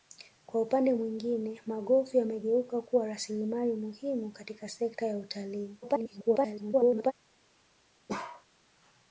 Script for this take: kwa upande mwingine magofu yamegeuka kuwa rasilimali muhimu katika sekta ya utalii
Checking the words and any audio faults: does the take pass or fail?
fail